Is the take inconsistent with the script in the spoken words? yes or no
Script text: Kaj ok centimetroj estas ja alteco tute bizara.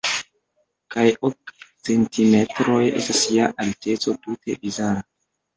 no